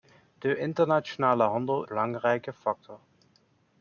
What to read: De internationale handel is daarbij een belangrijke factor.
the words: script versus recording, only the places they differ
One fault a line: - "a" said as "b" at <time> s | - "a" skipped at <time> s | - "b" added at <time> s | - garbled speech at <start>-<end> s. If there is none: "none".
- "is daarbij een" skipped at 1.9 s